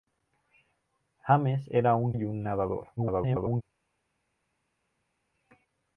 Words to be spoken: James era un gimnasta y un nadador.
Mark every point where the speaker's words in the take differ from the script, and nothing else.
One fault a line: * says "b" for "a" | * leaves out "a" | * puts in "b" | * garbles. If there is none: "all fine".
* leaves out "gimnasta"
* garbles